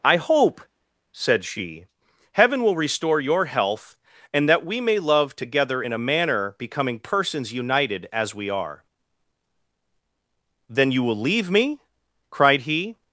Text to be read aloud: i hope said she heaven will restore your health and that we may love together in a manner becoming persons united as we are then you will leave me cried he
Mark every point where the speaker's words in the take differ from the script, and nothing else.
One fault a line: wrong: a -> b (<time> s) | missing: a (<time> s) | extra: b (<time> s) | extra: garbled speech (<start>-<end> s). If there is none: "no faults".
no faults